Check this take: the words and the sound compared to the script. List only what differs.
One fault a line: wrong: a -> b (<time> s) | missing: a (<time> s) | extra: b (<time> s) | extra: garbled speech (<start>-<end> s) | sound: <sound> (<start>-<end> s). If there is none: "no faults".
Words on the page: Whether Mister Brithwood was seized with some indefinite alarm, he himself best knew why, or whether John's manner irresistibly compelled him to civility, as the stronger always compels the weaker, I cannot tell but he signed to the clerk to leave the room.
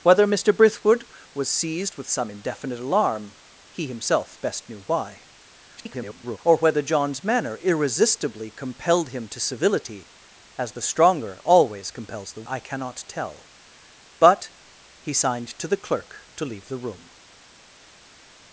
extra: garbled speech (5.8-6.4 s)
missing: weaker (12.4 s)